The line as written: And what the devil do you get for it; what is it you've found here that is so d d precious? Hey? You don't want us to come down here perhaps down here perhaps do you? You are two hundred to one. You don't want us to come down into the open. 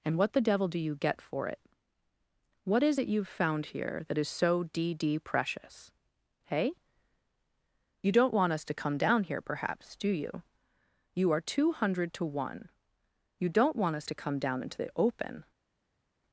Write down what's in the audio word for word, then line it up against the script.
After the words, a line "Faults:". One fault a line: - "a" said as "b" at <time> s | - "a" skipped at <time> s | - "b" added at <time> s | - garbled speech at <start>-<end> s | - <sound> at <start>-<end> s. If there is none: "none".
And what the devil do you get for it; what is it you've found here that is so d d precious? Hey? You don't want us to come down here perhaps do you? You are two hundred to one. You don't want us to come down into the open.
Faults:
- "down here perhaps" skipped at 10.0 s